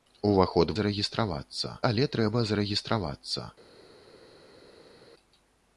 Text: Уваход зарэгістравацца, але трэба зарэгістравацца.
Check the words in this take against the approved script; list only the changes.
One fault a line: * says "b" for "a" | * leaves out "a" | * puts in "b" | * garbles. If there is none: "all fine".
all fine